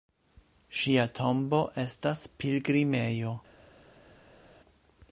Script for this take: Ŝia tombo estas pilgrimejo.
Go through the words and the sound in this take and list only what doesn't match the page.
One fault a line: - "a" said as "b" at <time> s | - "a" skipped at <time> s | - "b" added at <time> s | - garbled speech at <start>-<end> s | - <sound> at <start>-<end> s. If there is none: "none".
none